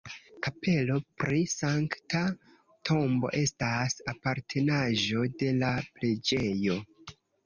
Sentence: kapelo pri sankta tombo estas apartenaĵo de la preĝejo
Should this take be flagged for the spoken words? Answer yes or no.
no